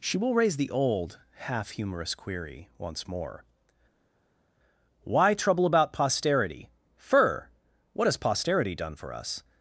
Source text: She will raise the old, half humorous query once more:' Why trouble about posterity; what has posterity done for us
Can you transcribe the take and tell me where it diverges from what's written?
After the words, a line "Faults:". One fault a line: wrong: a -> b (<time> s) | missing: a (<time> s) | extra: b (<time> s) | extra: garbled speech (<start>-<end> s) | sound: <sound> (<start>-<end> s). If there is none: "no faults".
She will raise the old, half humorous query once more:' Why trouble about posterity; fur what has posterity done for us
Faults:
extra: fur (7.0 s)